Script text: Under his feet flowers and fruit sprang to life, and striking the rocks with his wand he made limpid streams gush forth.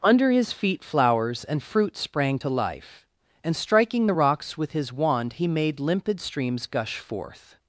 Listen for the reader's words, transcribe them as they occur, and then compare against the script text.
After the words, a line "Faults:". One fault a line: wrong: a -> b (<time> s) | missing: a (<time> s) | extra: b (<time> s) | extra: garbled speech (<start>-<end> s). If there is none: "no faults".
Under his feet flowers and fruit sprang to life, and striking the rocks with his wand he made limpid streams gush forth.
Faults:
no faults